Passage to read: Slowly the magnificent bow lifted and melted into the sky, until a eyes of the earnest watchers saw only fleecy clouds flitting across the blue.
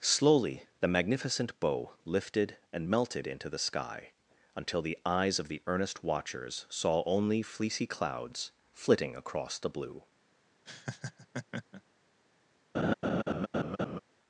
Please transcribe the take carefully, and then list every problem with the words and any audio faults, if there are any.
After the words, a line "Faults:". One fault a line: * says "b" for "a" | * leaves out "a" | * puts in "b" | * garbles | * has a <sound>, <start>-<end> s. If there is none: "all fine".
Slowly the magnificent bow lifted and melted into the sky, until the eyes of the earnest watchers saw only fleecy clouds flitting across the blue.
Faults:
* says "the" for "a"
* has a laugh, 10.7-11.8 s
* has a laugh, 12.7-14.0 s